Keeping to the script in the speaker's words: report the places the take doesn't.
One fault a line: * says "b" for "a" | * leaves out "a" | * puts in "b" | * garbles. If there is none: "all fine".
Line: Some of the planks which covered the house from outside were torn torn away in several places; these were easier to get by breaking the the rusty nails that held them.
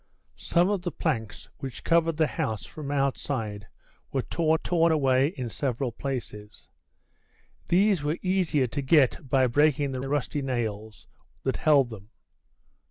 all fine